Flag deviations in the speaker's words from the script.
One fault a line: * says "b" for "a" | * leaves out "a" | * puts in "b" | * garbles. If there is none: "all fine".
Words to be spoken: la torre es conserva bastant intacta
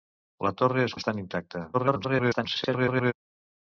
* leaves out "conserva"
* garbles